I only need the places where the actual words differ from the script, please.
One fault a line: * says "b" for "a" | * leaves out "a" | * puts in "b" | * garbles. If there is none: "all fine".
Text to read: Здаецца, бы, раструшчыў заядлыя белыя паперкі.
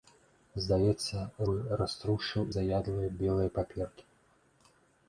all fine